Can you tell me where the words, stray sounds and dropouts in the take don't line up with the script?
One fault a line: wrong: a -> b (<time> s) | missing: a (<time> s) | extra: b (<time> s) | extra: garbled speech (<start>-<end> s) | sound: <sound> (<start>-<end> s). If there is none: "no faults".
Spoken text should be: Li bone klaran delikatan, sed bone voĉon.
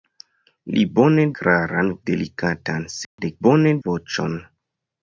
sound: dropout (3.0-3.2 s)